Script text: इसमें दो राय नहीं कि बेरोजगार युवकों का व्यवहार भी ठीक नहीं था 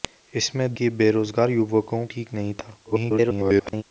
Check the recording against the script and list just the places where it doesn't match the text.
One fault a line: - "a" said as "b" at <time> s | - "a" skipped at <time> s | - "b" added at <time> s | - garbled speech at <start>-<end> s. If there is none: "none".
- "दो राय नहीं" skipped at 0.7 s
- "का व्यवहार भी" skipped at 2.0 s
- garbled speech at 2.8-3.8 s